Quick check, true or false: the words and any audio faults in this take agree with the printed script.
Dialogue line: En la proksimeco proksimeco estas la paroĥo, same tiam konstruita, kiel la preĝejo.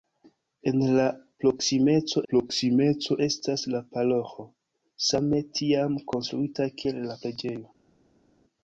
true